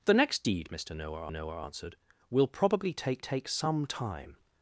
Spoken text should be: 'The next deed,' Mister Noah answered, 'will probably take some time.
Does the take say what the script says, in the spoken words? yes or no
no